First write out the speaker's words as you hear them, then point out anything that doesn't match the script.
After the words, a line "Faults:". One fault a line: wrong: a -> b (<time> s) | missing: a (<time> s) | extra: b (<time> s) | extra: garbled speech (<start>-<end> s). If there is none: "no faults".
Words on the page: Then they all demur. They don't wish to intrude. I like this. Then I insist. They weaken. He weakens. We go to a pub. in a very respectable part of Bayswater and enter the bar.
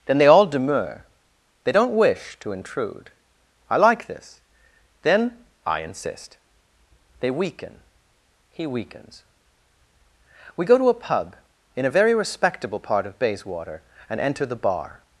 Then they all demur. They don't wish to intrude. I like this. Then I insist. They weaken. He weakens. We go to a pub. in a very respectable part of Bayswater and enter the bar.
Faults:
no faults